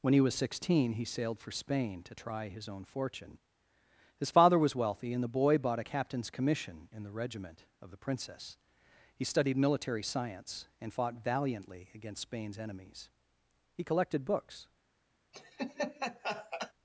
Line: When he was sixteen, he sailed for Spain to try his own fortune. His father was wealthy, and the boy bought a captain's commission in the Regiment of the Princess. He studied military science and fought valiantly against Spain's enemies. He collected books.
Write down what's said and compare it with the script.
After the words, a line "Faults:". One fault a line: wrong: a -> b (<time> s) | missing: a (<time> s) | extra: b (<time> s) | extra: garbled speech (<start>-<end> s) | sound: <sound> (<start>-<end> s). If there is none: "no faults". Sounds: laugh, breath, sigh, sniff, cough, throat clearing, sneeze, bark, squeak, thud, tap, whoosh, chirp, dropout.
When he was sixteen, he sailed for Spain to try his own fortune. His father was wealthy, and the boy bought a captain's commission in the Regiment of the Princess. He studied military science and fought valiantly against Spain's enemies. He collected books.
Faults:
sound: laugh (15.3-16.7 s)